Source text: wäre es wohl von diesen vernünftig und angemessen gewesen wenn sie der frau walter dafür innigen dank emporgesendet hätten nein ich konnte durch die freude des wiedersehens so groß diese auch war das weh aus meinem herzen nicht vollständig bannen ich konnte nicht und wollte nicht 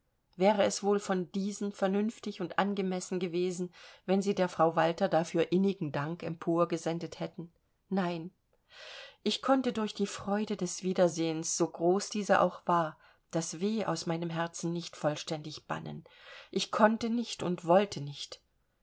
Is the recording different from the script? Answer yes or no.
no